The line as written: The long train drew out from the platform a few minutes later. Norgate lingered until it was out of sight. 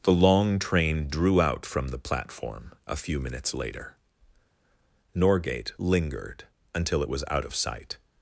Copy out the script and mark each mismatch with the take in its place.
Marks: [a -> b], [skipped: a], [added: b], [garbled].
The long train drew out from the platform a few minutes later. Norgate lingered until it was out of sight.